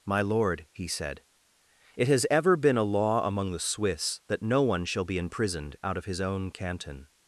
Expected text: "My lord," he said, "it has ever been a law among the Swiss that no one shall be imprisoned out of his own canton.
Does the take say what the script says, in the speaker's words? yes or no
yes